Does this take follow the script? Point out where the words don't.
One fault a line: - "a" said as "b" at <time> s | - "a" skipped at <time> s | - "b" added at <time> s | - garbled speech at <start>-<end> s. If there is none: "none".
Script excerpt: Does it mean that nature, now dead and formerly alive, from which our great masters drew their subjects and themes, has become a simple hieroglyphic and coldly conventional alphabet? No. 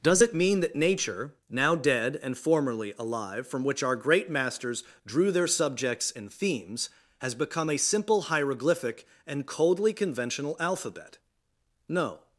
none